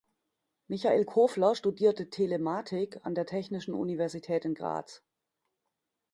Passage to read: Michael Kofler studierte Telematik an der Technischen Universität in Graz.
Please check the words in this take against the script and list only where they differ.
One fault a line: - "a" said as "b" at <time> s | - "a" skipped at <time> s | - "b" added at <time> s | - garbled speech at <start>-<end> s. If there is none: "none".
none